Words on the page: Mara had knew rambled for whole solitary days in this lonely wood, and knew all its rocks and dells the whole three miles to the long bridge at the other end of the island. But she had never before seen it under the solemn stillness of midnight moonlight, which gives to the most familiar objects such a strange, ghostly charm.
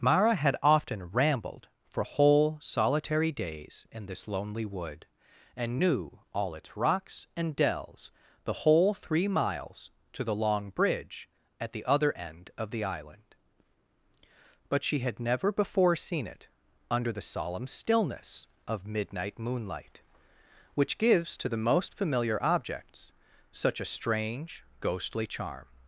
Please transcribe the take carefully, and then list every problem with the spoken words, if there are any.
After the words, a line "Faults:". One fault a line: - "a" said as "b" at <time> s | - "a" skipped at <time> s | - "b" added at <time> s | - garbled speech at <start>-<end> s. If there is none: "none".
Mara had often rambled for whole solitary days in this lonely wood, and knew all its rocks and dells the whole three miles to the long bridge at the other end of the island. But she had never before seen it under the solemn stillness of midnight moonlight, which gives to the most familiar objects such a strange, ghostly charm.
Faults:
- "knew" said as "often" at 0.6 s